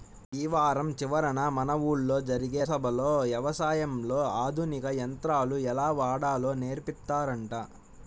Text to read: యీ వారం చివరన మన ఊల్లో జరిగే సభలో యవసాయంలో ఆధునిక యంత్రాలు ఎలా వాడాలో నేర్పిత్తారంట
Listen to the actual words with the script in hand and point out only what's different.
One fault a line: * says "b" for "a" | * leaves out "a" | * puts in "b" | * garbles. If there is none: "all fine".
all fine